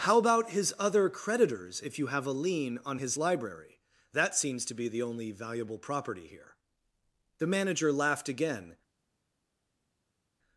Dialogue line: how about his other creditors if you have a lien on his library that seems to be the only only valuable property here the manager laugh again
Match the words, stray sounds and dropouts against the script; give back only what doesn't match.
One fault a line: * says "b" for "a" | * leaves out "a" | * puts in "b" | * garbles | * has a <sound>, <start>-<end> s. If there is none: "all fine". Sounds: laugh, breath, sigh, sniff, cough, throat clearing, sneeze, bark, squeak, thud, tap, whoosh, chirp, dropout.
* leaves out "only"
* says "laughed" for "laugh"